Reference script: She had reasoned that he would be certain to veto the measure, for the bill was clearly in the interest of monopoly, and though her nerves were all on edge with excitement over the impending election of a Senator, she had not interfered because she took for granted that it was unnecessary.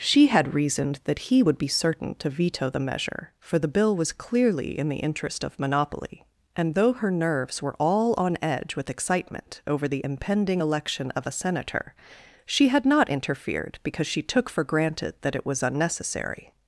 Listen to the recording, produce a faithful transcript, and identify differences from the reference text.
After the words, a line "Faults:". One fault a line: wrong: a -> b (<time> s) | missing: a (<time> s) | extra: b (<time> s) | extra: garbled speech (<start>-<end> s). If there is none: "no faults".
She had reasoned that he would be certain to veto the measure, for the bill was clearly in the interest of monopoly, and though her nerves were all on edge with excitement over the impending election of a Senator, she had not interfered because she took for granted that it was unnecessary.
Faults:
no faults